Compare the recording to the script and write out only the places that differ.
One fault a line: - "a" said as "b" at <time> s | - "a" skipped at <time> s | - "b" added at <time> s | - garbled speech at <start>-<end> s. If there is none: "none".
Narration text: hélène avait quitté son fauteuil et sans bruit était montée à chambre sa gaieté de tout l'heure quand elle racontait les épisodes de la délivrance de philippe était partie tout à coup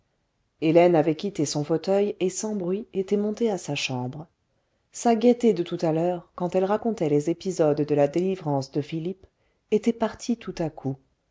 - "sa" added at 3.6 s
- "à" added at 5.8 s